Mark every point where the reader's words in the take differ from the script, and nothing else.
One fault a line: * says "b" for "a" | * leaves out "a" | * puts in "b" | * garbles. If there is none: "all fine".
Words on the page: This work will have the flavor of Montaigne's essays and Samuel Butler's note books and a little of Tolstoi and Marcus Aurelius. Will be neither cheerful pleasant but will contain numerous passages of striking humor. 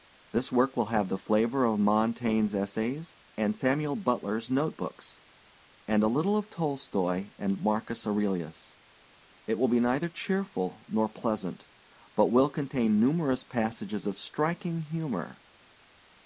* puts in "It"
* puts in "nor"